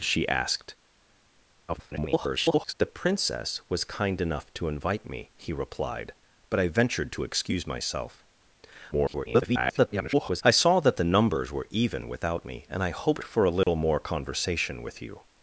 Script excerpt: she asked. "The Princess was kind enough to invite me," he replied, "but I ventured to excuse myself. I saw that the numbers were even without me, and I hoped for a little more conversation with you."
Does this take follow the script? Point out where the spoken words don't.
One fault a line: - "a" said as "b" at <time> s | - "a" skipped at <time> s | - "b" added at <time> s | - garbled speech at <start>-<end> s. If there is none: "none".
- garbled speech at 1.7-2.7 s
- garbled speech at 8.9-10.4 s